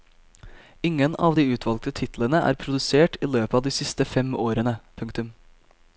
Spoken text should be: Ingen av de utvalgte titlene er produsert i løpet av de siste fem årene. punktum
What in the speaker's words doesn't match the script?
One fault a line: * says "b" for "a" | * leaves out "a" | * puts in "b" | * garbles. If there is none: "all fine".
all fine